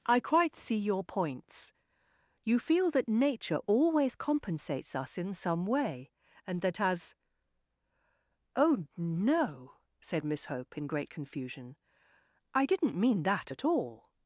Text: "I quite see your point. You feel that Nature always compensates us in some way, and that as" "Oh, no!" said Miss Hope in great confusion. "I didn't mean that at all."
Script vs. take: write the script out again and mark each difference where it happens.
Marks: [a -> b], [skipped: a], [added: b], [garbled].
"I quite see your [point. -> points] You feel that Nature always compensates us in some way, and that as" "Oh, no!" said Miss Hope in great confusion. "I didn't mean that at all."